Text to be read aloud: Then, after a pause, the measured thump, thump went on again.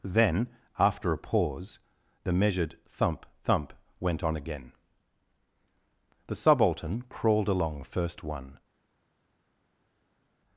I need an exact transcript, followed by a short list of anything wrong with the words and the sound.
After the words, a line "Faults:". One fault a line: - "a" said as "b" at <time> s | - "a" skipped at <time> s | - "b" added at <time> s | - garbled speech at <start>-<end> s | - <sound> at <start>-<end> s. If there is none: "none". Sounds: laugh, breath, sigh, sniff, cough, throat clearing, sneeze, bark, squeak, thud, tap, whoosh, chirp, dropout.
Then, after a pause, the measured thump, thump went on again. The Subaltern crawled along first one
Faults:
- "The Subaltern crawled along first one" added at 6.3 s